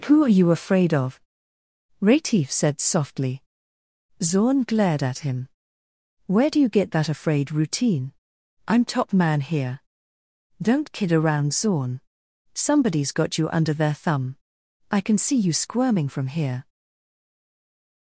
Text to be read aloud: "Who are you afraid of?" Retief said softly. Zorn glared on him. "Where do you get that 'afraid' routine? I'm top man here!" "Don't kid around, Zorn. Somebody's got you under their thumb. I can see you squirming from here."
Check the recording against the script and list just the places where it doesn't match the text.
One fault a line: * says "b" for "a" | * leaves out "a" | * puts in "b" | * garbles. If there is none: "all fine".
* says "at" for "on"